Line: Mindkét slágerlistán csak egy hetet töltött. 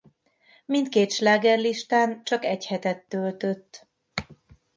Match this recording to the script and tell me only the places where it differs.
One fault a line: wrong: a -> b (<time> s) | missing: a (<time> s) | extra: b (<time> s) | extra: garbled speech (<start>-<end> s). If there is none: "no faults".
no faults